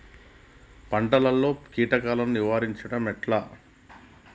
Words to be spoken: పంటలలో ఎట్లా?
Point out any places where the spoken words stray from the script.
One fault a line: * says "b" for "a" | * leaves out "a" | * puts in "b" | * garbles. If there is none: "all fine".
* puts in "కీటకాలను నిరోధించడం"